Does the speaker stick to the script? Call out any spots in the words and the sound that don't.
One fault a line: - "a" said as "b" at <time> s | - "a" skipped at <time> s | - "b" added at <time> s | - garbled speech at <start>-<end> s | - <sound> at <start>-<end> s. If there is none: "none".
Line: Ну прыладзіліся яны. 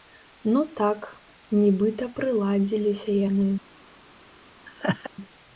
- "так нібыта" added at 0.8 s
- laugh at 4.6-5.1 s